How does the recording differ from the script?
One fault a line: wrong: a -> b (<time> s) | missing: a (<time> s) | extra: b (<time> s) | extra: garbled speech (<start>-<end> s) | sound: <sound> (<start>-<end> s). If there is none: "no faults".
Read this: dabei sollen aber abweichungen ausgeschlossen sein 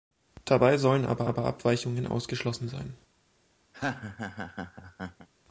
extra: aber (1.2 s)
sound: laugh (3.7-5.3 s)